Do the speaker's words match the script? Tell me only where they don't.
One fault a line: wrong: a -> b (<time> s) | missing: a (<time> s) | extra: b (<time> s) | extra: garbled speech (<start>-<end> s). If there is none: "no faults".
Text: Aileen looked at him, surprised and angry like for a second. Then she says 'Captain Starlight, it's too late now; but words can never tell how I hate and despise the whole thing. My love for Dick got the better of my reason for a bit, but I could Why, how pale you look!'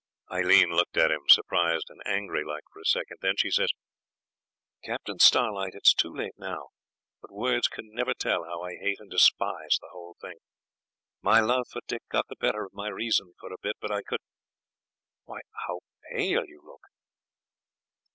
no faults